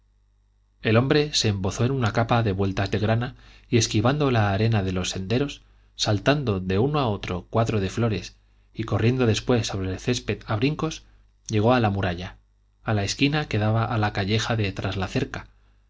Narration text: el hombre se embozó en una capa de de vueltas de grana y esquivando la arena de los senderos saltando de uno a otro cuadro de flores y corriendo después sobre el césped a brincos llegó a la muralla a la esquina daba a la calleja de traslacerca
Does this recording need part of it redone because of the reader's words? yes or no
yes